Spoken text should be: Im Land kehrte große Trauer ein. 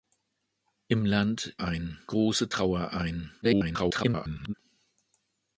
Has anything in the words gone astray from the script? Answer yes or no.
yes